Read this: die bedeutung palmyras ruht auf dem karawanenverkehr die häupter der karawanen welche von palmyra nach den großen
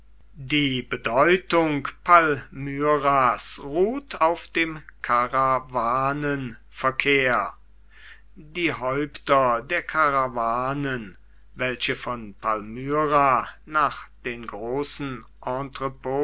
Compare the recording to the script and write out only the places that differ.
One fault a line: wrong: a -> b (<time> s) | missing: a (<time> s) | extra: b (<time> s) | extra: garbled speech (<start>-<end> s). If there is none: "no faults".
no faults